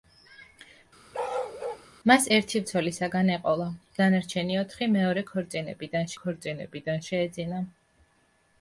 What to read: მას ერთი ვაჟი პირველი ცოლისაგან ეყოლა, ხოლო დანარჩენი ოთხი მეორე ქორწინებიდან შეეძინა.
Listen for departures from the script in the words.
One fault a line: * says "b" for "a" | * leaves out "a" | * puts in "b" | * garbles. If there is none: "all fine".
* leaves out "ვაჟი პირველი"
* leaves out "ხოლო"
* puts in "ქორწინებიდან"